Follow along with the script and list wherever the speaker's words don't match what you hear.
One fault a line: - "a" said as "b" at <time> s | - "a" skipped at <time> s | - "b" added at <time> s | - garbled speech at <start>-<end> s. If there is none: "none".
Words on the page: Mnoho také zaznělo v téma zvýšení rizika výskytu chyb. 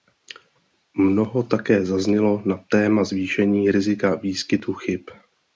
- "v" said as "na" at 2.5 s